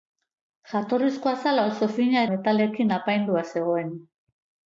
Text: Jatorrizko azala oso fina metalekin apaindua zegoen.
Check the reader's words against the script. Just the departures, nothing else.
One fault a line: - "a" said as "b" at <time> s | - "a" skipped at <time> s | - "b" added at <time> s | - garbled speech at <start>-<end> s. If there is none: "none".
none